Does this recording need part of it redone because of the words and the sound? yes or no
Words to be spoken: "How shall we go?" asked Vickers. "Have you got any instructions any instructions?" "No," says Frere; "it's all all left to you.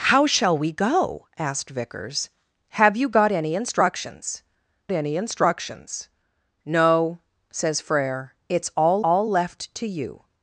no